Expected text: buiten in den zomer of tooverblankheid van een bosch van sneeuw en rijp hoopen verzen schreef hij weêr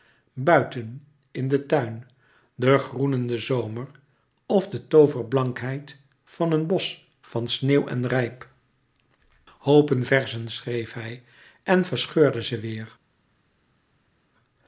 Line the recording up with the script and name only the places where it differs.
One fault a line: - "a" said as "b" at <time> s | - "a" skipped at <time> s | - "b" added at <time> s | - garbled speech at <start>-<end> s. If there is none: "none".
- "tuin de groenende" added at 1.7 s
- "de" added at 4.7 s
- "en verscheurde ze" added at 11.6 s